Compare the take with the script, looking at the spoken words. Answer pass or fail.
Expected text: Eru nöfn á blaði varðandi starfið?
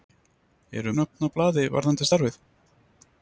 pass